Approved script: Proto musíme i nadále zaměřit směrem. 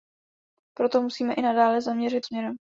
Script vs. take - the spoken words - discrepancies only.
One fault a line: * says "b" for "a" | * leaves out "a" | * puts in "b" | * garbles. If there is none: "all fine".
all fine